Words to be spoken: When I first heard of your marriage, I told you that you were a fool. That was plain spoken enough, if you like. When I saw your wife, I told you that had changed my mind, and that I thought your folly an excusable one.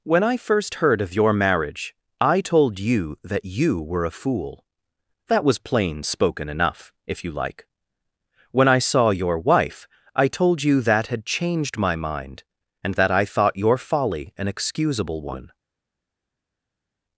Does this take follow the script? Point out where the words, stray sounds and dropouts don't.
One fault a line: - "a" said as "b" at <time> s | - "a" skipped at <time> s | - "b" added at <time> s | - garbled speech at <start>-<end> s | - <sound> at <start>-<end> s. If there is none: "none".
none